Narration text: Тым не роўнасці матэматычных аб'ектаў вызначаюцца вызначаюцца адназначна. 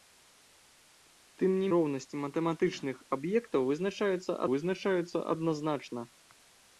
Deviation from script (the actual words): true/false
false